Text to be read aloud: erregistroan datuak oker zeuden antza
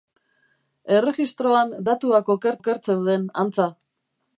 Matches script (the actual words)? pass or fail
fail